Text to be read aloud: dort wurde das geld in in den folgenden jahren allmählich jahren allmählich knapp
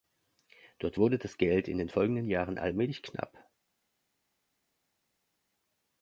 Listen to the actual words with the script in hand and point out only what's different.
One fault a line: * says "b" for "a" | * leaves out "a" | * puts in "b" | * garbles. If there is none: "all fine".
* leaves out "in"
* leaves out "jahren allmählich"